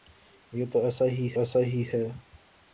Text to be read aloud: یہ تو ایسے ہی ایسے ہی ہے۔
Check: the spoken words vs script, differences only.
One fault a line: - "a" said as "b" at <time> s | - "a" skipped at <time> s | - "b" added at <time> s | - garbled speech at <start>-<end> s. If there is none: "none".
none